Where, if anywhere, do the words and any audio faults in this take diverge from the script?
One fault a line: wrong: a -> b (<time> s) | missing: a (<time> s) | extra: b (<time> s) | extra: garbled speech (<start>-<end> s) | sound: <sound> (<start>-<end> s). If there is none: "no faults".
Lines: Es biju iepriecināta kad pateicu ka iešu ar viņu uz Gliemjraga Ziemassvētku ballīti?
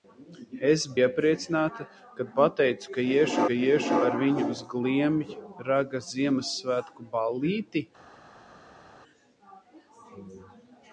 missing: biju (0.8 s)
extra: ka iešu (3.5 s)